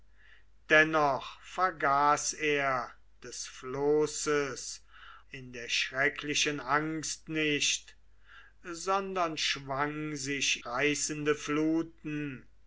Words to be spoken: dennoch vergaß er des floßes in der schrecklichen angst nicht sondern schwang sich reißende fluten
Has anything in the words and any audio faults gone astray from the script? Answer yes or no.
no